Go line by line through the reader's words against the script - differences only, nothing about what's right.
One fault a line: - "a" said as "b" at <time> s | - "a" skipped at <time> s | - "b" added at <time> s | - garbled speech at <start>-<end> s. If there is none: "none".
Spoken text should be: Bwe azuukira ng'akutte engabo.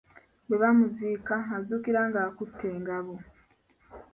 - "bamuziika" added at 0.6 s